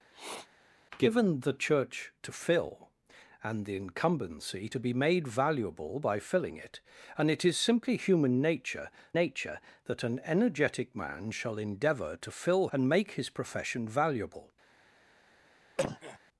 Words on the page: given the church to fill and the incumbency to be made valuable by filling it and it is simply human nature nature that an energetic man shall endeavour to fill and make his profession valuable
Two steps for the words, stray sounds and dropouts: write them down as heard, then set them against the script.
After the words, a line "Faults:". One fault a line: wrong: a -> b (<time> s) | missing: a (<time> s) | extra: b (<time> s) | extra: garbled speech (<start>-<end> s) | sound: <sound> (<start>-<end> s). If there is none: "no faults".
given the church to fill and the incumbency to be made valuable by filling it and it is simply human nature nature that an energetic man shall endeavour to fill and make his profession valuable
Faults:
sound: sniff (0.1-0.5 s)
sound: cough (15.8-16.2 s)